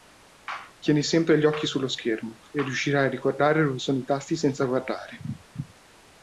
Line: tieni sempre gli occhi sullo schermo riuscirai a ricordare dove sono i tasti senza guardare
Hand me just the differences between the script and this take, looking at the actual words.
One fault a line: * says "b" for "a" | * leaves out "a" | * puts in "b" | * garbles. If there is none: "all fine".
* puts in "e"